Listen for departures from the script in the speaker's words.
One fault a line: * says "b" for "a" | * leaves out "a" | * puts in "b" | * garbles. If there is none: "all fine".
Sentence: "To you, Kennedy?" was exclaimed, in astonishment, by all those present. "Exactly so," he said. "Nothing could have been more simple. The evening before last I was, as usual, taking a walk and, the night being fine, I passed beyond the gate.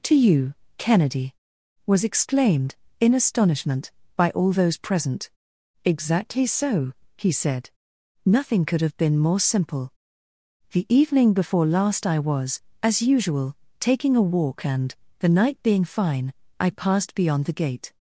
all fine